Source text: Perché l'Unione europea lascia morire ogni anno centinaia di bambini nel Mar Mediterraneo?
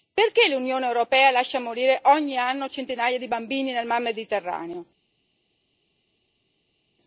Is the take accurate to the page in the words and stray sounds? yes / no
yes